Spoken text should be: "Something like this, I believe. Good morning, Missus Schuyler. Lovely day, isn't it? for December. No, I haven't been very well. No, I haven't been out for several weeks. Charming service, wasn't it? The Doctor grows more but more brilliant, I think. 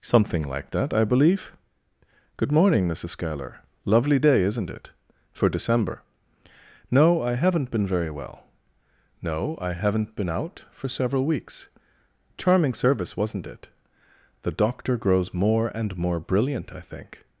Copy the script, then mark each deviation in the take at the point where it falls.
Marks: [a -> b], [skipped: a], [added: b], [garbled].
"Something like [this, -> that] I believe. Good morning, Missus Schuyler. Lovely day, isn't it? for December. No, I haven't been very well. No, I haven't been out for several weeks. Charming service, wasn't it? The Doctor grows more [but -> and] more brilliant, I think.